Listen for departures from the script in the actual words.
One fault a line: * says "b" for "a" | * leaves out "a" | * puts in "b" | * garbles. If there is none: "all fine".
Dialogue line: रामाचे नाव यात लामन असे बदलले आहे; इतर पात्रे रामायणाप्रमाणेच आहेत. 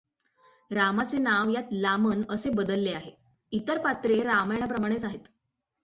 all fine